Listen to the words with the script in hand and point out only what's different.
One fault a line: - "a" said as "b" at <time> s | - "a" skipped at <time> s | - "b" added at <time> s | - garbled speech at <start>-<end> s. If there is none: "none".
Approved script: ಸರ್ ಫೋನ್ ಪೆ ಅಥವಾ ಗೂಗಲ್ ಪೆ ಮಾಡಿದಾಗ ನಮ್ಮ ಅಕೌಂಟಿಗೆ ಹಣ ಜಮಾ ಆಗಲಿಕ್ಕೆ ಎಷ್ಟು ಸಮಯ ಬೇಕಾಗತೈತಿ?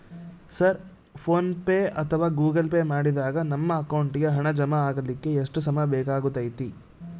none